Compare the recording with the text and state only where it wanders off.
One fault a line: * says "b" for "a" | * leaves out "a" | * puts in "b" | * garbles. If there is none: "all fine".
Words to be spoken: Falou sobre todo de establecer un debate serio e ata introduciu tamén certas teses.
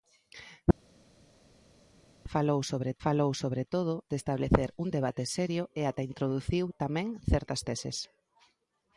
* puts in "falou sobre"